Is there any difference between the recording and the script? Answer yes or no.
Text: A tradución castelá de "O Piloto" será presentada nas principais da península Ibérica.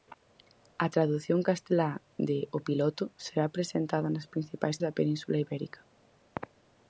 no